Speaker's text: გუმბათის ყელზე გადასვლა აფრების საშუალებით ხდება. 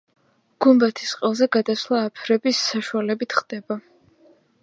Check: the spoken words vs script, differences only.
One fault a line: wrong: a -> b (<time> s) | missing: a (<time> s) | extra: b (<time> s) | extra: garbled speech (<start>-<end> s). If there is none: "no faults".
no faults